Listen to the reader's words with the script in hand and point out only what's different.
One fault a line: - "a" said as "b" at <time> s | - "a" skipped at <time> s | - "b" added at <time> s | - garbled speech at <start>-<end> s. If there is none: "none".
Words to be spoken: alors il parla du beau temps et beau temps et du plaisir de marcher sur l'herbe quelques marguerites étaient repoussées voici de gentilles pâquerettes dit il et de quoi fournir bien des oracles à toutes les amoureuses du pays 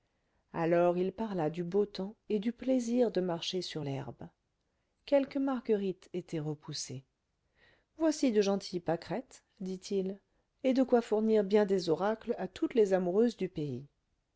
- "beau temps et" skipped at 2.4 s